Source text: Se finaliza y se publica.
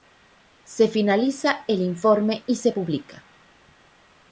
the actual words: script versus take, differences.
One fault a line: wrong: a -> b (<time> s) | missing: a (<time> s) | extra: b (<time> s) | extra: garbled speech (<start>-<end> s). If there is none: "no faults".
extra: el informe (1.7 s)